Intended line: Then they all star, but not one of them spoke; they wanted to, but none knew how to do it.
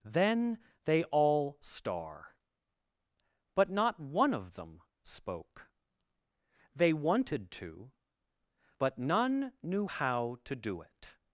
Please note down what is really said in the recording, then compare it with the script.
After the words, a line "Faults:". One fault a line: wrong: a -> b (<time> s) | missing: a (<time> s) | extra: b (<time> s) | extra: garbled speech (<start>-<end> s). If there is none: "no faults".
Then they all star, but not one of them spoke; they wanted to, but none knew how to do it.
Faults:
no faults